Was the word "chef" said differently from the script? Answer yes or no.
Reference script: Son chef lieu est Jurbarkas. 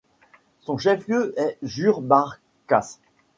no